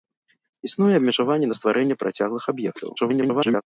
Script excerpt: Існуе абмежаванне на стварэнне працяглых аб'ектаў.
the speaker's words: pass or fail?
fail